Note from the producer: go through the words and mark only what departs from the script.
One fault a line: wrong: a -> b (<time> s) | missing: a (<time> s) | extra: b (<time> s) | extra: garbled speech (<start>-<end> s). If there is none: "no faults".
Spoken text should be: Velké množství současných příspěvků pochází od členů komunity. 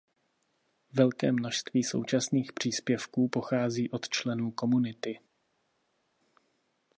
no faults